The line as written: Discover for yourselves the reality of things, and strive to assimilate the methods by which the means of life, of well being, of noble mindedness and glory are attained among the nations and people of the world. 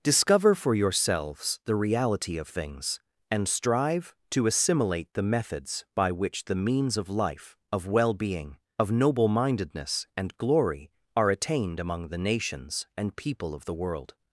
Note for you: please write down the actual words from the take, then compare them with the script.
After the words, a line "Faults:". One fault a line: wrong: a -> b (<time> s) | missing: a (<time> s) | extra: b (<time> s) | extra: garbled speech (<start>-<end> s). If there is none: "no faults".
Discover for yourselves the reality of things, and strive to assimilate the methods by which the means of life, of well being, of noble mindedness and glory are attained among the nations and people of the world.
Faults:
no faults